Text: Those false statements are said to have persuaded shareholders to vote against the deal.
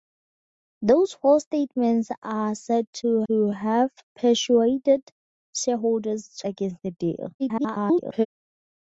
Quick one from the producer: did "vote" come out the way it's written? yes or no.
no